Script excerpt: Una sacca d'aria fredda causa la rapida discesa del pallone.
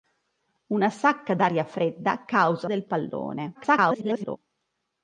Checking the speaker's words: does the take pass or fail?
fail